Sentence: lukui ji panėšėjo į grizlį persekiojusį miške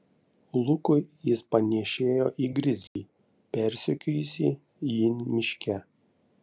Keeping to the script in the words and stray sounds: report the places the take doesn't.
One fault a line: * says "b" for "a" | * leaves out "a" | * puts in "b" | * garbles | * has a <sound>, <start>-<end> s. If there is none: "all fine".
* says "jis" for "ji"
* has a dropout, 2.9-3.0 s
* puts in "jį"